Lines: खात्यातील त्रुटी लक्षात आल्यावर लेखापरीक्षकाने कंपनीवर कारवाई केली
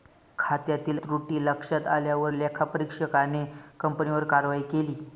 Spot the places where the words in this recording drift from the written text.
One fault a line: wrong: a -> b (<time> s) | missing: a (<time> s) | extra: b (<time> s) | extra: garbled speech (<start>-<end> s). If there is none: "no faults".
no faults